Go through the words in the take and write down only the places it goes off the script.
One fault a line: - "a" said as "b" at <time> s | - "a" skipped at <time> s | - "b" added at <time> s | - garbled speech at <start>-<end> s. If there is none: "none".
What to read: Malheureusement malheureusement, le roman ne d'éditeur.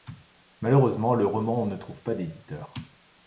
- "malheureusement" skipped at 1.1 s
- "trouve pas" added at 1.8 s